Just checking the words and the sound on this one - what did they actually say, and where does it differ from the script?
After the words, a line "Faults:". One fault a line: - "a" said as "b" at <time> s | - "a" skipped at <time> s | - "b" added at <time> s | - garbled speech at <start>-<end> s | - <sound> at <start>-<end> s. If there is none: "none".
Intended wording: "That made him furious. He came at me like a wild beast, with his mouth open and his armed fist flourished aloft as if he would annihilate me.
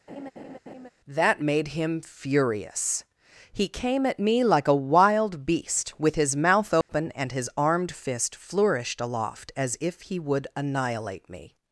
"That made him furious. He came at me like a wild beast, with his mouth open and his armed fist flourished aloft as if he would annihilate me.
Faults:
- laugh at 0.1-0.9 s
- dropout at 6.8-6.9 s